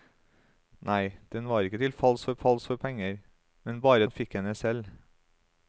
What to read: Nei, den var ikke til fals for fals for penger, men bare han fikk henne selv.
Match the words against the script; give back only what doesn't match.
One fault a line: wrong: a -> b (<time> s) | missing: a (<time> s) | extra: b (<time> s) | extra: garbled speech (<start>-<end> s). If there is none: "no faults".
no faults